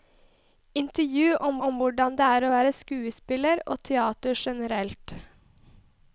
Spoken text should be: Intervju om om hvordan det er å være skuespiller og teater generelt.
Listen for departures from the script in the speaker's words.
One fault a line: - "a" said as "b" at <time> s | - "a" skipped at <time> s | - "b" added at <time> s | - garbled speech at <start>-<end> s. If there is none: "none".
none